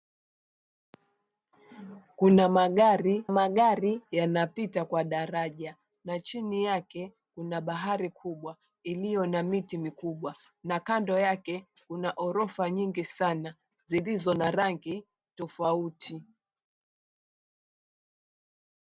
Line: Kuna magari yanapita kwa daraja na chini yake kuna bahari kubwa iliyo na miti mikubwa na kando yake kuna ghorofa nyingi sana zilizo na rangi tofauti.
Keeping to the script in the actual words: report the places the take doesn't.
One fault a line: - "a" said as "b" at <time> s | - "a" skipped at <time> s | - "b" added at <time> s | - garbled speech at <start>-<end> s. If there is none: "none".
- "magari" added at 3.3 s